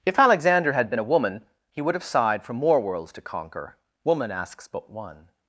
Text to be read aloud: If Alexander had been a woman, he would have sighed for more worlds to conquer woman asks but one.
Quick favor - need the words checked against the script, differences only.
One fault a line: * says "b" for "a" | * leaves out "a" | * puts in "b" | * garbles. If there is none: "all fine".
all fine